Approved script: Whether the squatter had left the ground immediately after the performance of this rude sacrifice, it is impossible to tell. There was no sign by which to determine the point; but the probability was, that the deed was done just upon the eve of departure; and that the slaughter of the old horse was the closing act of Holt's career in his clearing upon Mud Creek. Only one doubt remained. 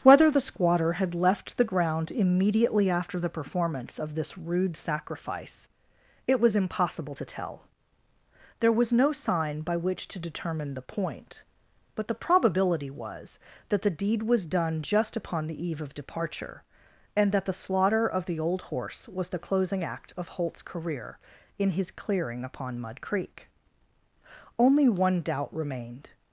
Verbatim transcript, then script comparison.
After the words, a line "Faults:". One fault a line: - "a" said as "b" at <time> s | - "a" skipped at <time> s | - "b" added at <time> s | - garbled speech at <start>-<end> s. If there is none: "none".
Whether the squatter had left the ground immediately after the performance of this rude sacrifice, it was impossible to tell. There was no sign by which to determine the point; but the probability was, that the deed was done just upon the eve of departure; and that the slaughter of the old horse was the closing act of Holt's career in his clearing upon Mud Creek. Only one doubt remained.
Faults:
- "is" said as "was" at 6.4 s